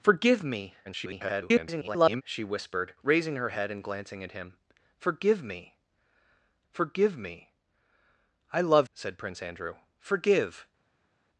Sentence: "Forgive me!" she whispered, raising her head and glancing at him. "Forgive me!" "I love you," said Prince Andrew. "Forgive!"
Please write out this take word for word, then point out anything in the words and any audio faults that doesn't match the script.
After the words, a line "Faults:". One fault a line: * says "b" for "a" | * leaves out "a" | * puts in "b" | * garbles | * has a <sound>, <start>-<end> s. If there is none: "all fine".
"Forgive me!" [garbled] she whispered, raising her head and glancing at him. "Forgive me forgive me!" "I love," said Prince Andrew. "Forgive!"
Faults:
* garbles
* puts in "forgive me"
* leaves out "you"